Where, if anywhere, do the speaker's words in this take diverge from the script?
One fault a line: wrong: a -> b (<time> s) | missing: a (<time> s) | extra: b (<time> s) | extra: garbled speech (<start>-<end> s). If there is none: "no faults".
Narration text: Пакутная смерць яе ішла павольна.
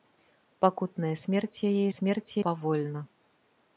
wrong: ішла -> смерць (2.0 s)